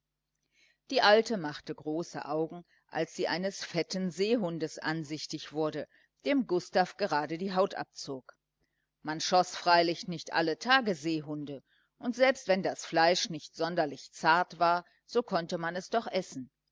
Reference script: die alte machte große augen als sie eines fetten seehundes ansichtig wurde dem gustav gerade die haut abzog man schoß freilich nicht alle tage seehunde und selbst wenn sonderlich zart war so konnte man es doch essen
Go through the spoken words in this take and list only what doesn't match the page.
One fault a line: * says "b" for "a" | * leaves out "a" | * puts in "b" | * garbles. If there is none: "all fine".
* puts in "das fleisch nicht"